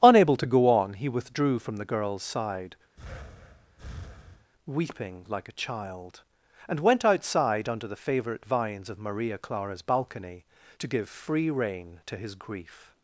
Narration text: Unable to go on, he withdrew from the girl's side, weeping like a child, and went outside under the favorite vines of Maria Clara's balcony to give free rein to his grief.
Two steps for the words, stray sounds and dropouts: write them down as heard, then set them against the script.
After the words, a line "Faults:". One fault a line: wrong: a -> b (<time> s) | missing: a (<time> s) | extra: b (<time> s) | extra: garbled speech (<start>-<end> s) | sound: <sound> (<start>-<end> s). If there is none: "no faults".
Unable to go on, he withdrew from the girl's side, weeping like a child, and went outside under the favorite vines of Maria Clara's balcony to give free rein to his grief.
Faults:
sound: breath (3.0-4.5 s)